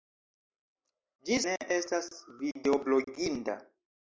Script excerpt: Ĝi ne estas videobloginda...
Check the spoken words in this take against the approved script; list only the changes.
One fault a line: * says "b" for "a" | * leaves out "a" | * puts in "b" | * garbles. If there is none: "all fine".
all fine